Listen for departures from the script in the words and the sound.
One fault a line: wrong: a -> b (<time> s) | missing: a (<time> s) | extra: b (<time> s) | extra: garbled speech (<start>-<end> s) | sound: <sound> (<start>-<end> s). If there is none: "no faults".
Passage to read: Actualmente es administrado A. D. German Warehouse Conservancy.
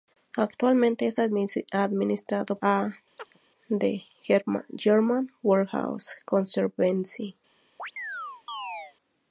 sound: chirp (3.2-3.4 s)
sound: chirp (7.8-9.0 s)